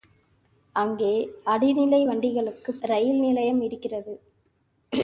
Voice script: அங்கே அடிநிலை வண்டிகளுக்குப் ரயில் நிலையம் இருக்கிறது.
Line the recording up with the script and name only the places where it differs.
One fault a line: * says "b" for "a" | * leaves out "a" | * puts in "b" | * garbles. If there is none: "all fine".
all fine